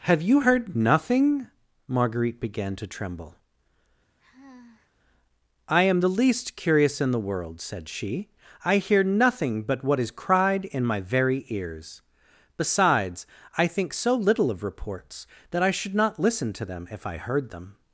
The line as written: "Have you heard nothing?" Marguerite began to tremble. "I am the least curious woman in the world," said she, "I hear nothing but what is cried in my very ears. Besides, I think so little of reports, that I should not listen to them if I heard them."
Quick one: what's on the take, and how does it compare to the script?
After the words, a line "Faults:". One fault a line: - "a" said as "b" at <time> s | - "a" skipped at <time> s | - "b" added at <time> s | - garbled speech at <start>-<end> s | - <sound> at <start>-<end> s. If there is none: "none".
"Have you heard nothing?" Marguerite began to tremble. "I am the least curious in the world," said she, "I hear nothing but what is cried in my very ears. Besides, I think so little of reports, that I should not listen to them if I heard them."
Faults:
- sigh at 4.2-4.9 s
- "woman" skipped at 7.0 s